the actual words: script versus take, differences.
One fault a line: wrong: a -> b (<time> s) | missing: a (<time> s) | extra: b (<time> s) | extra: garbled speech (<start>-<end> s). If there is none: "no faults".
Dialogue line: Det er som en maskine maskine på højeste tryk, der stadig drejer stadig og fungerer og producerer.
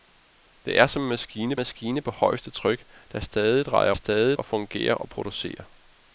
no faults